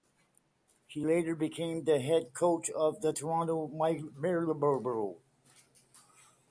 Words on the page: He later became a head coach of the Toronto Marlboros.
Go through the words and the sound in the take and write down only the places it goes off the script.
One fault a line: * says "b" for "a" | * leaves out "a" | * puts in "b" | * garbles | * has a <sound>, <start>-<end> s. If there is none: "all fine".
* says "the" for "a"